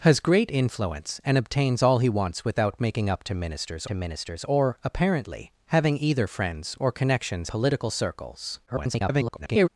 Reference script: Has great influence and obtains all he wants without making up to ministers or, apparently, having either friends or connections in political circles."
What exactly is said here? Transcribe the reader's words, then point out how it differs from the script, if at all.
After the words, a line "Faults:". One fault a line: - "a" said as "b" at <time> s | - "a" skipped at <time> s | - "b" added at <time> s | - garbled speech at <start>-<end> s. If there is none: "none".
Has great influence and obtains all he wants without making up to ministers to ministers or, apparently, having either friends or connections political circles." [garbled]
Faults:
- "to ministers" added at 3.9 s
- "in" skipped at 7.5 s
- garbled speech at 8.7-9.7 s